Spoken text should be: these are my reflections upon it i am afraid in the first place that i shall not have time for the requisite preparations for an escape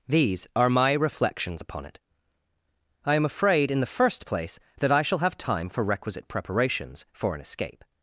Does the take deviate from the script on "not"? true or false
true